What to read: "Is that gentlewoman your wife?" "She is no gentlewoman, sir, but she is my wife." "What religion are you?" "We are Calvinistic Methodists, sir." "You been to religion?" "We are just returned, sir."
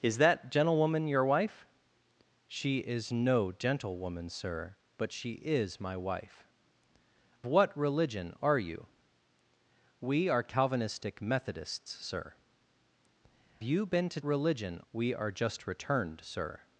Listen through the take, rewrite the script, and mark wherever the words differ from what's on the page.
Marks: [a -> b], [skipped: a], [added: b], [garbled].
"Is that gentlewoman your wife?" "She is no gentlewoman, sir, but she is my wife." "What religion are you?" "We are Calvinistic Methodists, sir." "You been to religion?" "We are just returned, sir."